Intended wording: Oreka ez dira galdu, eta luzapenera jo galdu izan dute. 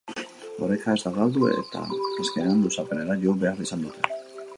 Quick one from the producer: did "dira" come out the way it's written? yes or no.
no